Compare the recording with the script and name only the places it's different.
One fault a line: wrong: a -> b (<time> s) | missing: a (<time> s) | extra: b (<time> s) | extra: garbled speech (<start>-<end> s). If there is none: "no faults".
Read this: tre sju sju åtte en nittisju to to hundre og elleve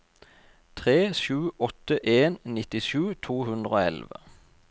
missing: sju (1.4 s)
missing: to (3.4 s)